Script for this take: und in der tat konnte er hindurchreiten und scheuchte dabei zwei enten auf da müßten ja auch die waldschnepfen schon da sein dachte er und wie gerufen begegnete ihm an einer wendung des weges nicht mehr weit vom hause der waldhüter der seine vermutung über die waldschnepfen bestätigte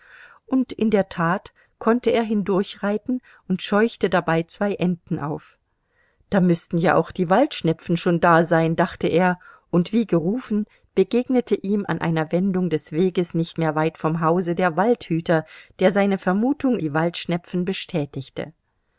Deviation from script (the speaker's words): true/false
true